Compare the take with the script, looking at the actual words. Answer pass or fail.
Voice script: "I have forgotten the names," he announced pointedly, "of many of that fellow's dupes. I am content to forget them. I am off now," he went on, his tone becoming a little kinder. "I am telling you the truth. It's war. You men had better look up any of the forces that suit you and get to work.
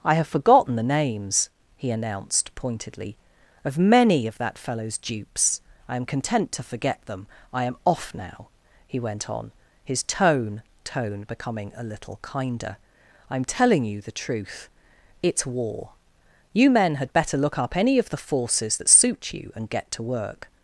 fail